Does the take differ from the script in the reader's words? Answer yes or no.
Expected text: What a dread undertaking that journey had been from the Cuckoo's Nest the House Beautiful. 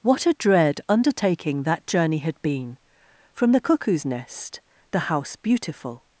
no